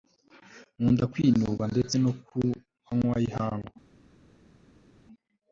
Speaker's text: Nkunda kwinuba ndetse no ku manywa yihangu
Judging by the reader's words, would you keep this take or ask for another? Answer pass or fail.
pass